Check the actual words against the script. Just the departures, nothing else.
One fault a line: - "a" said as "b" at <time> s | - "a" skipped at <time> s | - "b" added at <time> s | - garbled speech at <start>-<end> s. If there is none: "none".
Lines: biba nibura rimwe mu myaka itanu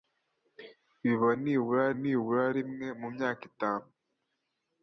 - "nibura" added at 2.0 s